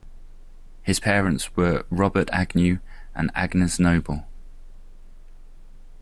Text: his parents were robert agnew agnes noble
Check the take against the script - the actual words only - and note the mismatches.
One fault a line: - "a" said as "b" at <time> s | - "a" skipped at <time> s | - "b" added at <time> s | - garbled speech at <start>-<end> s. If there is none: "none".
- "and" added at 3.1 s